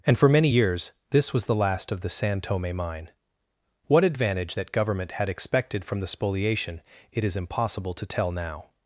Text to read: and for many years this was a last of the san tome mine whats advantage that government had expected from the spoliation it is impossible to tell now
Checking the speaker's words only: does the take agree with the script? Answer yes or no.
no